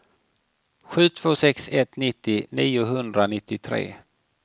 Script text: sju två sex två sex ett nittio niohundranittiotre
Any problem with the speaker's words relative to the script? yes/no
yes